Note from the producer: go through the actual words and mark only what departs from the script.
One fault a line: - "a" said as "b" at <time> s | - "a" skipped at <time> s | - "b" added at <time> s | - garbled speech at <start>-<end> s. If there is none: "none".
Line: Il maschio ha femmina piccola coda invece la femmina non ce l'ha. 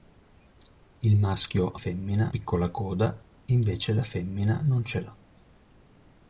none